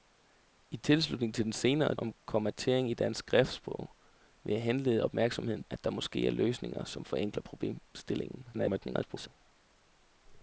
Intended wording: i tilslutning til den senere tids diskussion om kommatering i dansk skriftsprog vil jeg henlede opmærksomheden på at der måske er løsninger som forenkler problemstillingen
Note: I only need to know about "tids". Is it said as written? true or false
false